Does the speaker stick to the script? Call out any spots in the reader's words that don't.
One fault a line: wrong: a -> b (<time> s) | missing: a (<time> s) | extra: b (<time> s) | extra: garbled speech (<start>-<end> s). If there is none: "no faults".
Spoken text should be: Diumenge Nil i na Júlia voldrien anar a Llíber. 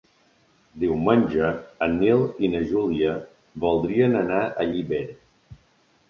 extra: en (1.9 s)